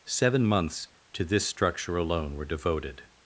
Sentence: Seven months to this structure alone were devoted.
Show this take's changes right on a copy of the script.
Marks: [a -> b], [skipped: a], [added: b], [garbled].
Seven months to this structure alone were devoted.